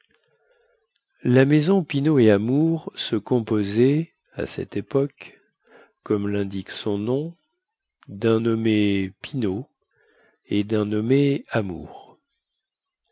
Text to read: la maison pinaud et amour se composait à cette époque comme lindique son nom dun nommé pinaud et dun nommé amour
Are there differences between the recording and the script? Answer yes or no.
no